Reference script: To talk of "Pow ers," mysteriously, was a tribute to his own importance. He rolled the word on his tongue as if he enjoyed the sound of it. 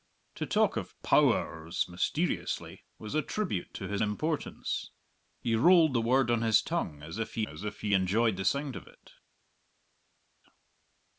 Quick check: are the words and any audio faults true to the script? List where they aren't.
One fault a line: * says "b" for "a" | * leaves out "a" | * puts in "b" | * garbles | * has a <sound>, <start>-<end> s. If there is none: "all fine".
* leaves out "own"
* puts in "as if he"